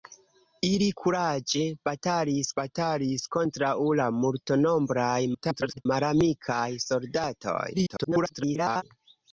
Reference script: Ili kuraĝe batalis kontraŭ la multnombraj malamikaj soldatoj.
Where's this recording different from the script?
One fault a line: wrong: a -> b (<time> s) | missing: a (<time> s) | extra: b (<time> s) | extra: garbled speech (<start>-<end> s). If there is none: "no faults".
extra: batalis (2.6 s)
extra: garbled speech (5.3-5.9 s)
extra: garbled speech (7.7-8.8 s)